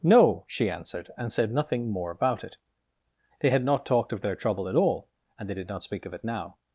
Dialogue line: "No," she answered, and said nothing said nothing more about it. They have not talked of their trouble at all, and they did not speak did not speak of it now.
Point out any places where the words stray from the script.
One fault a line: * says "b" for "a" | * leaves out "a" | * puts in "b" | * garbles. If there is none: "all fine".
* leaves out "said nothing"
* says "had" for "have"
* leaves out "did not speak"